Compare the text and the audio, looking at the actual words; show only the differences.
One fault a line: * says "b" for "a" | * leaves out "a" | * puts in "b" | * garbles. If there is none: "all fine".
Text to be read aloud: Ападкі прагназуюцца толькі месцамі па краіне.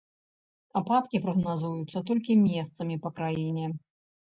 all fine